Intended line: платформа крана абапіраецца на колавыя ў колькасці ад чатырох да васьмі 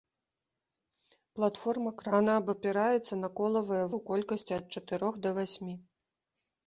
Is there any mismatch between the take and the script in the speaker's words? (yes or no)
no